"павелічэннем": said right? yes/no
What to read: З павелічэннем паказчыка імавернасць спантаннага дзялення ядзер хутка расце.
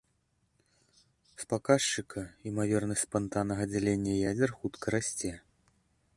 no